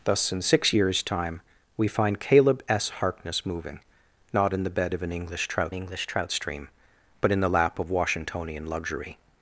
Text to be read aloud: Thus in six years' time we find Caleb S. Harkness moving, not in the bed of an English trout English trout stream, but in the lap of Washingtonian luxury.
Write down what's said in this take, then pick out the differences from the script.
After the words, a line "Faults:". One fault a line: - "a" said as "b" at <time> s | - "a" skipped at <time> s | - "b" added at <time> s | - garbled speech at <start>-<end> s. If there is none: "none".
Thus in six years' time we find Caleb S. Harkness moving, not in the bed of an English trout English trout stream, but in the lap of Washingtonian luxury.
Faults:
none